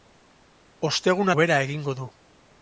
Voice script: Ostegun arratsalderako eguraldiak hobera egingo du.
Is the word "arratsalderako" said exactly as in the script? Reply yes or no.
no